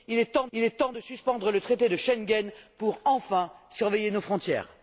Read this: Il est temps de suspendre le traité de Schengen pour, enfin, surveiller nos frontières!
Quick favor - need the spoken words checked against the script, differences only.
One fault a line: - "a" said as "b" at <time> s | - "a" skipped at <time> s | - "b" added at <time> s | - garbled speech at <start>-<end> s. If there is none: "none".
- "il est temps" added at 0.5 s